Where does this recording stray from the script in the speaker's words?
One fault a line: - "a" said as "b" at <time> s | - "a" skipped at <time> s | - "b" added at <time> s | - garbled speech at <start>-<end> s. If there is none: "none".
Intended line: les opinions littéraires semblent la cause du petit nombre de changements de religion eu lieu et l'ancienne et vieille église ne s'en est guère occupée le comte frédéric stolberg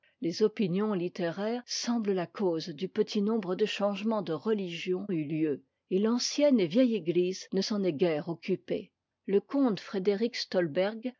none